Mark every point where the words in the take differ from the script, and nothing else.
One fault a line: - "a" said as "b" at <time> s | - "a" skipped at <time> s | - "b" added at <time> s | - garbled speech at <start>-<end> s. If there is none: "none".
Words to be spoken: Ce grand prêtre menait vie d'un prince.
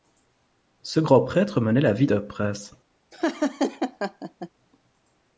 - "la" added at 1.8 s